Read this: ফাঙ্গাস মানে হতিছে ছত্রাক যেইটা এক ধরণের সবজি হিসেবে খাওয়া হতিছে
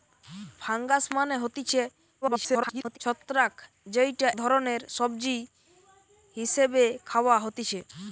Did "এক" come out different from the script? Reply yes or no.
yes